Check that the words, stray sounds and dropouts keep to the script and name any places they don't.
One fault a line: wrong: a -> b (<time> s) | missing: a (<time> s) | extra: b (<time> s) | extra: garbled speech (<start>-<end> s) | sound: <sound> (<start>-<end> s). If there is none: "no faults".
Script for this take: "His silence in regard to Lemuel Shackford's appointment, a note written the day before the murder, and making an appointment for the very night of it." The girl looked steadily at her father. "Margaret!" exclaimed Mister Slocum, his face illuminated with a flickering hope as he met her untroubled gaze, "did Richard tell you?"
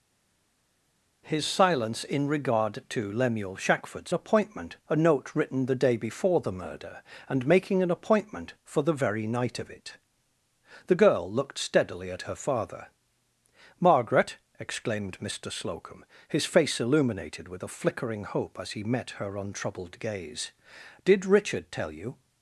no faults